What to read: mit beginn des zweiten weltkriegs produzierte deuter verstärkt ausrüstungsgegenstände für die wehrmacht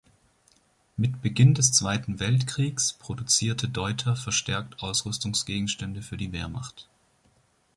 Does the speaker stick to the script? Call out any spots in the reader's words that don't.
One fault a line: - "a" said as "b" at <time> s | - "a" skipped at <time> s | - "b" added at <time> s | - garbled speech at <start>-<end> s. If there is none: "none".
none